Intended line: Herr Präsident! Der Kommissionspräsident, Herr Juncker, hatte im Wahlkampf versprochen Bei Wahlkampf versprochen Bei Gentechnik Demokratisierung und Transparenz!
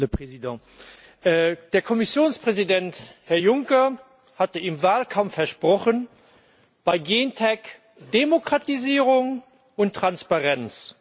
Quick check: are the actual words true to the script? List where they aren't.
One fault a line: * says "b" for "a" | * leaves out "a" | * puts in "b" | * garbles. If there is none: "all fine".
* leaves out "Wahlkampf versprochen Bei"